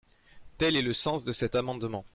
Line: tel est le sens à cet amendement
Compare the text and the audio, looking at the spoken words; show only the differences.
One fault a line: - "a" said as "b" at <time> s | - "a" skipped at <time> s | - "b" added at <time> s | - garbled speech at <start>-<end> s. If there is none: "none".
- "à" said as "de" at 1.2 s